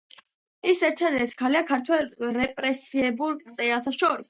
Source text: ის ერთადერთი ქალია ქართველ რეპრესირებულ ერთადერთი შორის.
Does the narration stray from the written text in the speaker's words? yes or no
yes